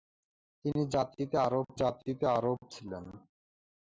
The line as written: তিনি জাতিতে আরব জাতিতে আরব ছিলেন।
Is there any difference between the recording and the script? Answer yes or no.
no